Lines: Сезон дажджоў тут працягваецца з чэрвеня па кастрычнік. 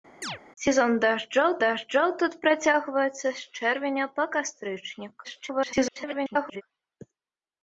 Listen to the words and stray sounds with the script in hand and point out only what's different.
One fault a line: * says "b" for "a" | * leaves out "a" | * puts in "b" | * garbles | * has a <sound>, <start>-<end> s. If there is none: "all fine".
* has a chirp, 0.2-0.4 s
* puts in "дажджоў"
* garbles